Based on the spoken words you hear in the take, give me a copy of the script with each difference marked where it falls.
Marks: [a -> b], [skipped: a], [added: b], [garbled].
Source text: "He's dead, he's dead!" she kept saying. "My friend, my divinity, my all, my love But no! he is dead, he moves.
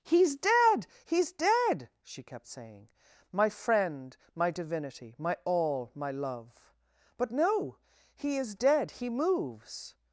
"He's dead, he's dead!" she kept saying. "My friend, my divinity, my all, my love But no! he is dead, he moves.